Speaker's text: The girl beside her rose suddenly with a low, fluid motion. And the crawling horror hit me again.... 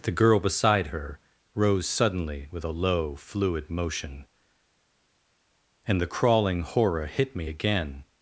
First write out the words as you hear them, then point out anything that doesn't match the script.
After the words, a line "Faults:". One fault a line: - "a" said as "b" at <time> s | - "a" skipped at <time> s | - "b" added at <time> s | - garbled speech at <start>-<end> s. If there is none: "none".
The girl beside her rose suddenly with a low, fluid motion. And the crawling horror hit me again....
Faults:
none